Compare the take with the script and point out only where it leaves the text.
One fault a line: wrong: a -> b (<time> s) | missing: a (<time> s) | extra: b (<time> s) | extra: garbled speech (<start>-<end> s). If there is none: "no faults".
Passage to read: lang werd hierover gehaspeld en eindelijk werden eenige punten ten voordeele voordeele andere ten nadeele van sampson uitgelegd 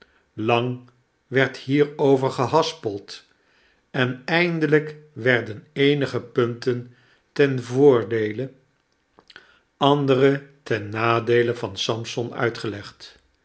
missing: voordeele (8.5 s)